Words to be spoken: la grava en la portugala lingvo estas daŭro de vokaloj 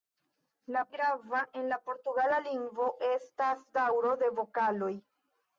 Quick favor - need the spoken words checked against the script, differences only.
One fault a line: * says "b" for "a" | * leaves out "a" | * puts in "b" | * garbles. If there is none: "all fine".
all fine